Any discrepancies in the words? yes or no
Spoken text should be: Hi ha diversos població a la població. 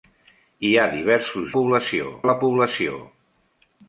no